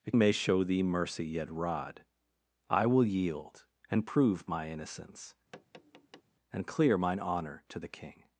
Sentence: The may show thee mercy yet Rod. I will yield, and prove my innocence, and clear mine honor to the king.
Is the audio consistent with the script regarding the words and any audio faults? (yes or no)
no